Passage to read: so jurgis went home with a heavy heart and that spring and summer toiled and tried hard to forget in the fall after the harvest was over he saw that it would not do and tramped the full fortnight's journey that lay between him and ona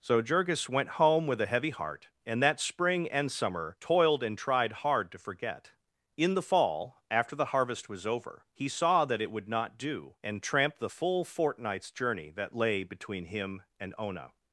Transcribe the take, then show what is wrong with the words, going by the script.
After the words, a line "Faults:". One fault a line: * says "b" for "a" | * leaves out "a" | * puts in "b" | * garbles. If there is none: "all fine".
so jurgis went home with a heavy heart and that spring and summer toiled and tried hard to forget in the fall after the harvest was over he saw that it would not do and tramped the full fortnight's journey that lay between him and ona
Faults:
all fine